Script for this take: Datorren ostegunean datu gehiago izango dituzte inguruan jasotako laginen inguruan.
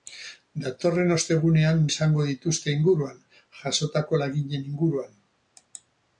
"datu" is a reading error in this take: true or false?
true